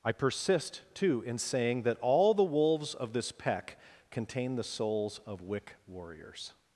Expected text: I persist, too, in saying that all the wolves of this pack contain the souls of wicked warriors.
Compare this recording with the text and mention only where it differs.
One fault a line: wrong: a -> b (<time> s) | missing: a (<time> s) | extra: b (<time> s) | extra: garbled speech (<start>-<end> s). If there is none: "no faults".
wrong: pack -> peck (3.3 s)
wrong: wicked -> wick (5.4 s)